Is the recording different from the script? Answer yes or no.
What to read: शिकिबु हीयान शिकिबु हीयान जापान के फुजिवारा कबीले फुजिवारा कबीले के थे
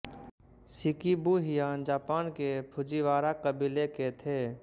yes